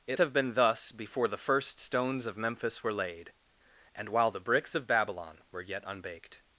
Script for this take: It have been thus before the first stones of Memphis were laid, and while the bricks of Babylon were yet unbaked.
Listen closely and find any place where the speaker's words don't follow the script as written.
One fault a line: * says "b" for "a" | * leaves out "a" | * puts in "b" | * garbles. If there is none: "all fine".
all fine